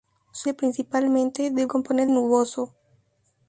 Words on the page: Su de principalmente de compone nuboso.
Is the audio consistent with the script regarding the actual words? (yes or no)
yes